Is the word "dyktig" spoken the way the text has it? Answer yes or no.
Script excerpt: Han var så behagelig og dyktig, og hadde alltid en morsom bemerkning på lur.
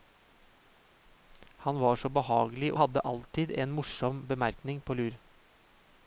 no